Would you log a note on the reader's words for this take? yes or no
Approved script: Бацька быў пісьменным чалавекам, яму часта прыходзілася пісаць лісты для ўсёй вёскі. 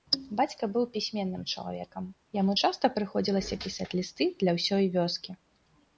no